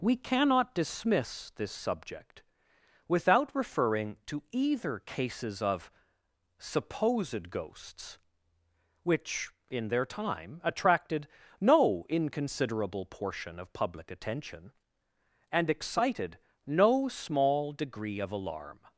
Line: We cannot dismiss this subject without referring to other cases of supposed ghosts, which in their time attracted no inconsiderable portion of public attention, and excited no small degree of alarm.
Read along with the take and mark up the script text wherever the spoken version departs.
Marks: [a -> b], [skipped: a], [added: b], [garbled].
We cannot dismiss this subject without referring to [other -> either] cases of supposed ghosts, which in their time attracted no inconsiderable portion of public attention, and excited no small degree of alarm.